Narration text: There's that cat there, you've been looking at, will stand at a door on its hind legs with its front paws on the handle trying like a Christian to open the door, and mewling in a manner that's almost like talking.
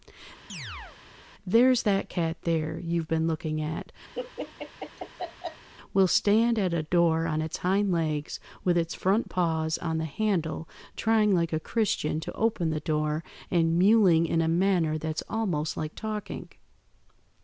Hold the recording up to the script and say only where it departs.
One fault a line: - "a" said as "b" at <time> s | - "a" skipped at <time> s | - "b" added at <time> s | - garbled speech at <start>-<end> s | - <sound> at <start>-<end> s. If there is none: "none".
- chirp at 0.5-1.0 s
- laugh at 4.1-5.7 s